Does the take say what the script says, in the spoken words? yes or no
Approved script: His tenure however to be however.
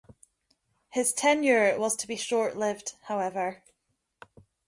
no